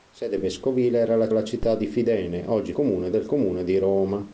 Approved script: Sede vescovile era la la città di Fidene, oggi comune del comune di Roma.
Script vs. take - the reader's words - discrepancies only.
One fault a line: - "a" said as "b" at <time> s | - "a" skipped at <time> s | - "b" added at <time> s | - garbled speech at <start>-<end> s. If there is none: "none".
none